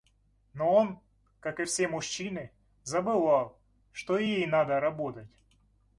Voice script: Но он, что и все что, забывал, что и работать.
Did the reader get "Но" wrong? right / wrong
right